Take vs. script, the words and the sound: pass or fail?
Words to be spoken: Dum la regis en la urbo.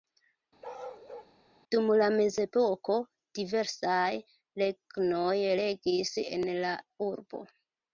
fail